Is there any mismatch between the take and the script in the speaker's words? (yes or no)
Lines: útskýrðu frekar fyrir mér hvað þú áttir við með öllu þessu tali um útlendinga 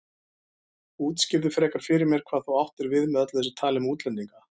no